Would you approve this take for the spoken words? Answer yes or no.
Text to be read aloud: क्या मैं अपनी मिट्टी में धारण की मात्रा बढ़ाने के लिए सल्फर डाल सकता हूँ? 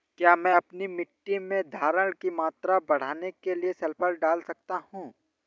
yes